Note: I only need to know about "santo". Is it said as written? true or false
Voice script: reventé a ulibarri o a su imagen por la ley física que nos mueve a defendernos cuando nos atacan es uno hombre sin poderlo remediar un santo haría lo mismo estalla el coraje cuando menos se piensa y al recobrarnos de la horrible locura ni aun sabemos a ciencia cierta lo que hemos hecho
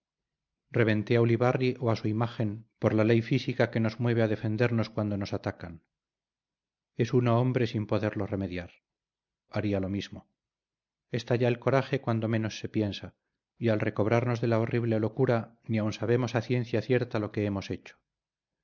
false